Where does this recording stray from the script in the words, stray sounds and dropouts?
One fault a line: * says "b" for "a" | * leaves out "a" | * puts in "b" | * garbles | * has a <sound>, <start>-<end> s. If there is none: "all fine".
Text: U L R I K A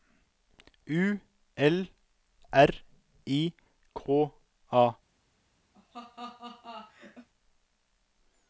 * has a laugh, 5.7-7.3 s